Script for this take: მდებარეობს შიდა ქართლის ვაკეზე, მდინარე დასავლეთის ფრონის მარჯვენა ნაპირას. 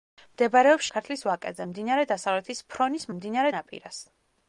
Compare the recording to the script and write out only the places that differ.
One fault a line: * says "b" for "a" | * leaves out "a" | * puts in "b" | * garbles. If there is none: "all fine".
* leaves out "შიდა"
* says "მდინარე" for "მარჯვენა"